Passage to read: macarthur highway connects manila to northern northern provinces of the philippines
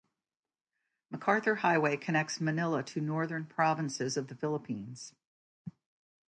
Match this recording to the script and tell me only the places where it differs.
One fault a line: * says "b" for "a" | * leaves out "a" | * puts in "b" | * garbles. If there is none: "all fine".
* leaves out "northern"